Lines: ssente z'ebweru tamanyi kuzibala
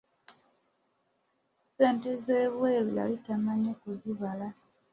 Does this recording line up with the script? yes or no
no